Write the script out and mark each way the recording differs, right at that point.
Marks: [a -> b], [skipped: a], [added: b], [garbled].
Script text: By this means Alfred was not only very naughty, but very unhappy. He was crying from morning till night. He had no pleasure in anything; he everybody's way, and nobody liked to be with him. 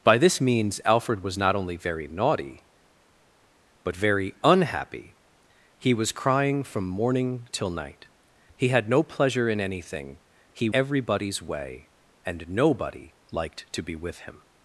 By this means Alfred was not only very naughty, but very unhappy. He was crying from morning till night. He had no pleasure in anything; he everybody's way, and nobody liked to be with him.